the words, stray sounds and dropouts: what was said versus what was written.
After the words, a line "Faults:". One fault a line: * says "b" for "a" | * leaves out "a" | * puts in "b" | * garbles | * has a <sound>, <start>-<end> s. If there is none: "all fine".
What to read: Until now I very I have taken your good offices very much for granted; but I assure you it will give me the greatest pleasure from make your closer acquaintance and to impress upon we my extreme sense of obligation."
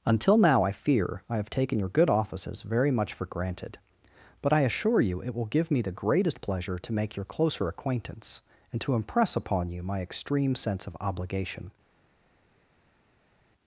Until now I fear I have taken your good offices very much for granted; but I assure you it will give me the greatest pleasure to make your closer acquaintance and to impress upon you my extreme sense of obligation."
Faults:
* says "fear" for "very"
* says "to" for "from"
* says "you" for "we"